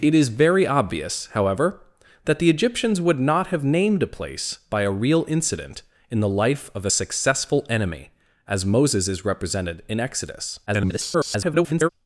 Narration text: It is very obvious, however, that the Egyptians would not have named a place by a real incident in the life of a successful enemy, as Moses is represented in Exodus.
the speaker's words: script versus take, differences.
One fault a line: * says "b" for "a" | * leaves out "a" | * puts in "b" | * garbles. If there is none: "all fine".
* garbles